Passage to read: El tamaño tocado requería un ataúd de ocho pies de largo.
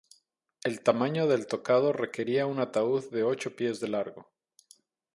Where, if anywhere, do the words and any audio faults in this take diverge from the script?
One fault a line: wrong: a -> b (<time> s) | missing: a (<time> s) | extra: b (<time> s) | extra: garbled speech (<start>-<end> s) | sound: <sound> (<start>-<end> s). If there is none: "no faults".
extra: del (1.3 s)